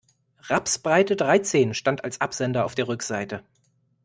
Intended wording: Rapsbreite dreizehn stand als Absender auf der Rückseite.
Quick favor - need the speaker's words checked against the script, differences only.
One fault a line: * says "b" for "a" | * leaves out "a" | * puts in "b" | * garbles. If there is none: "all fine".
all fine